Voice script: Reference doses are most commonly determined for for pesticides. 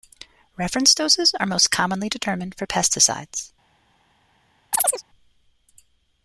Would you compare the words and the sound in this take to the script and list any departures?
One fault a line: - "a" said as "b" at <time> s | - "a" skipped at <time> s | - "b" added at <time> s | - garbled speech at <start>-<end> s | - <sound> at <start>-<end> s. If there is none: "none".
- "for" skipped at 2.7 s
- chirp at 4.7-5.0 s